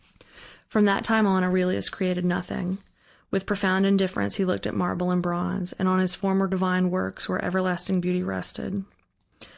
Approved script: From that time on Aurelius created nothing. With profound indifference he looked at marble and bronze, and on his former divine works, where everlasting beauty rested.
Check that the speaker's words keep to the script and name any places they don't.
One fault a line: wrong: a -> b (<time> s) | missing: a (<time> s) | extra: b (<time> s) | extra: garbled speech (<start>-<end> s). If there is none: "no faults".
no faults